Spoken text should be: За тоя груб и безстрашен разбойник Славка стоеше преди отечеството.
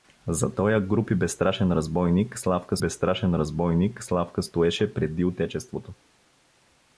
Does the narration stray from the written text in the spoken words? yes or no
yes